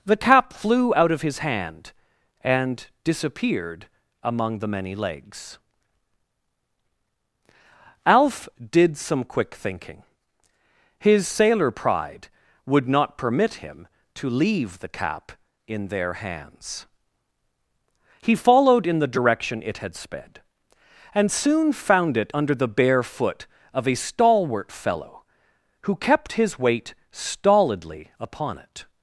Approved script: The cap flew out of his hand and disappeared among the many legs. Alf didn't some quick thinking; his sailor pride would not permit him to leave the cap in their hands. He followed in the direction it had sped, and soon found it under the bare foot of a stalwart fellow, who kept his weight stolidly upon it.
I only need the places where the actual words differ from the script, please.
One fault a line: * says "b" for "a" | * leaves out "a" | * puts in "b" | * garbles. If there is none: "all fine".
* says "did" for "didn't"